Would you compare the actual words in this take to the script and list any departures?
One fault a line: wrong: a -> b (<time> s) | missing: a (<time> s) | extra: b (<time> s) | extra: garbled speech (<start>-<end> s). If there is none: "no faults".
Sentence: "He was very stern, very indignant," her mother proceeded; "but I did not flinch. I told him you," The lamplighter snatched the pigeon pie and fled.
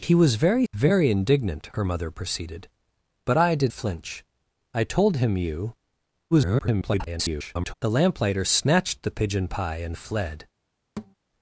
missing: stern (0.7 s)
missing: not (3.7 s)
extra: garbled speech (6.3-7.7 s)